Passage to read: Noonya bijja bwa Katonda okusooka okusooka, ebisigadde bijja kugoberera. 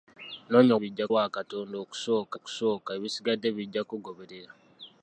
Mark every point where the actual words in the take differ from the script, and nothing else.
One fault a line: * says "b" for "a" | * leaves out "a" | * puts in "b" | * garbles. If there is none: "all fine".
all fine